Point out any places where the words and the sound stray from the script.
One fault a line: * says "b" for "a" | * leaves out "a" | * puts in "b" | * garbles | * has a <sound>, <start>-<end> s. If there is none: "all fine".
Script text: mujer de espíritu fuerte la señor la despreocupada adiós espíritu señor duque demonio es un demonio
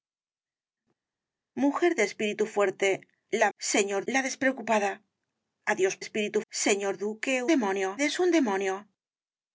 all fine